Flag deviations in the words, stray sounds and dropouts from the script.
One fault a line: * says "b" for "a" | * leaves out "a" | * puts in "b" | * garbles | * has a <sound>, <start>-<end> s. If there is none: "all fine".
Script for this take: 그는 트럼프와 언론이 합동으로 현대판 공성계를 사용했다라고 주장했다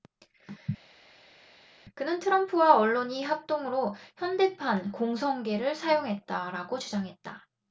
all fine